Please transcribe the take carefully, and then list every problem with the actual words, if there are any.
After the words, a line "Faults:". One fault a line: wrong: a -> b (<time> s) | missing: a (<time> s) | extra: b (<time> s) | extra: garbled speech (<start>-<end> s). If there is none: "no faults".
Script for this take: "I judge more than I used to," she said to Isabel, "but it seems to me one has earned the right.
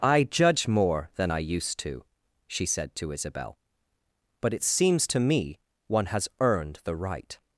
"I judge more than I used to," she said to Isabel, "but it seems to me one has earned the right.
Faults:
no faults